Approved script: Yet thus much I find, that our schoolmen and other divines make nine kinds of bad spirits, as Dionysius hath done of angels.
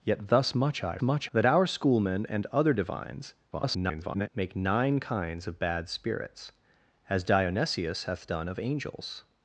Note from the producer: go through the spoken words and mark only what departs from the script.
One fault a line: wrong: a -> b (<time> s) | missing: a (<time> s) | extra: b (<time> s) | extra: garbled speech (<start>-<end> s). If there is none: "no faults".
wrong: find -> much (1.0 s)
extra: garbled speech (3.5-4.3 s)